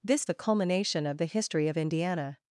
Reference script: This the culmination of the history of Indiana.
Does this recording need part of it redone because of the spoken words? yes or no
no